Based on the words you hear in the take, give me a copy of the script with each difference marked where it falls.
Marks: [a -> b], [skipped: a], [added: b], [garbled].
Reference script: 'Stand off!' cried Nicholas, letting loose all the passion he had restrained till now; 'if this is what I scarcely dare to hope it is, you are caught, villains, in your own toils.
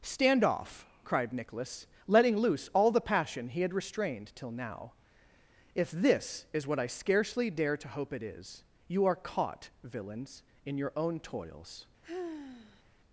'Stand off!' cried Nicholas, letting loose all the passion he had restrained till now; 'if this is what I scarcely dare to hope it is, you are caught, villains, in your own toils.